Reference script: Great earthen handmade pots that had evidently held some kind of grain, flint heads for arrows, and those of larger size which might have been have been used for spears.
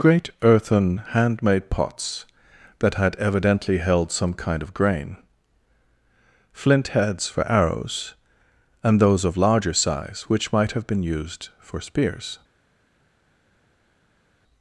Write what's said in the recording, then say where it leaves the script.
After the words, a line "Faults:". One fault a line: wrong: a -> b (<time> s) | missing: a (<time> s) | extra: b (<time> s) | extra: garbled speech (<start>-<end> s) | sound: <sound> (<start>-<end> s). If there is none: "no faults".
Great earthen handmade pots that had evidently held some kind of grain, flint heads for arrows, and those of larger size which might have been used for spears.
Faults:
missing: have been (11.0 s)